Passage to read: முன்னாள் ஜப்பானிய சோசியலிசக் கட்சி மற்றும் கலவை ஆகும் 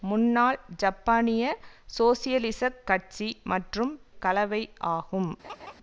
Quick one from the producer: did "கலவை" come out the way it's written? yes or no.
yes